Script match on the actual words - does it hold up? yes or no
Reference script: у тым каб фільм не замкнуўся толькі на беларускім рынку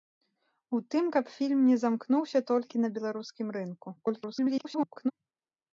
no